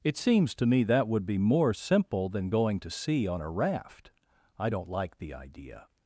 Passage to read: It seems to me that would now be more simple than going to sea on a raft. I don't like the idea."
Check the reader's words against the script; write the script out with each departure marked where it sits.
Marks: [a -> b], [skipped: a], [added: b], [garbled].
It seems to me that would [skipped: now] be more simple than going to sea on a raft. I don't like the idea."